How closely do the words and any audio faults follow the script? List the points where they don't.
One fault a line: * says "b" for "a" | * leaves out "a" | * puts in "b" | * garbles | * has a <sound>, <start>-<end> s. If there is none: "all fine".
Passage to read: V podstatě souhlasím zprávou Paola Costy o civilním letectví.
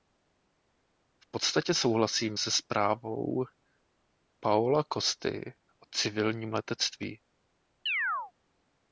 * puts in "se"
* has a chirp, 7.9-8.3 s